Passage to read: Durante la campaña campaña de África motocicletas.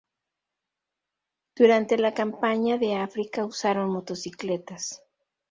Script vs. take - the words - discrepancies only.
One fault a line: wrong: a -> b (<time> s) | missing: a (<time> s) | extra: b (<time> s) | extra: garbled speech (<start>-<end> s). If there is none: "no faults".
missing: campaña (2.8 s)
extra: usaron (3.5 s)